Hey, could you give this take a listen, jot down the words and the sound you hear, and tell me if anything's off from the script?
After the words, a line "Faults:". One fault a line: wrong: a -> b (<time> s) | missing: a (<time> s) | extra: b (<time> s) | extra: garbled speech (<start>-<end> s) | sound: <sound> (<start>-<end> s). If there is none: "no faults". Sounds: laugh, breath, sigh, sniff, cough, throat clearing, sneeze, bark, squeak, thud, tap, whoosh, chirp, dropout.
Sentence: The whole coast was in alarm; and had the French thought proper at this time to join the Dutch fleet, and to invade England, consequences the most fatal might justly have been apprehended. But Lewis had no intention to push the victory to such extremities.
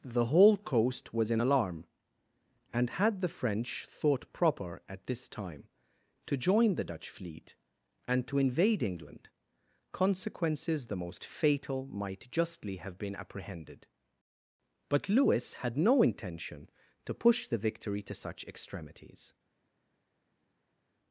The whole coast was in alarm; and had the French thought proper at this time to join the Dutch fleet, and to invade England, consequences the most fatal might justly have been apprehended. But Lewis had no intention to push the victory to such extremities.
Faults:
no faults